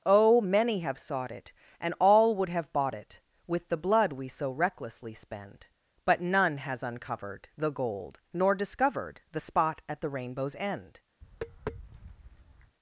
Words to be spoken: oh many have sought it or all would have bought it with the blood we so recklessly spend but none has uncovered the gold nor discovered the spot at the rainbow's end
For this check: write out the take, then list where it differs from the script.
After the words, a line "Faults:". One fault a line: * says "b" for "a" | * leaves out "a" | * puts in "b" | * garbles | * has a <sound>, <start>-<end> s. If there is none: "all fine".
oh many have sought it and all would have bought it with the blood we so recklessly spend but none has uncovered the gold nor discovered the spot at the rainbow's end
Faults:
* says "and" for "or"
* has a tap, 11.2-12.8 s